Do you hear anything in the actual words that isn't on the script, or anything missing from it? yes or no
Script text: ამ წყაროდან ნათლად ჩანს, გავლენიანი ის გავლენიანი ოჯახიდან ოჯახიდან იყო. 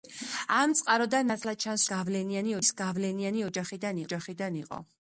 no